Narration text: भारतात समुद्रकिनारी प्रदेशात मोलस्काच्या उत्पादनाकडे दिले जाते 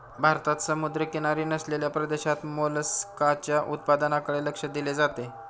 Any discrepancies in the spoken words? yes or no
yes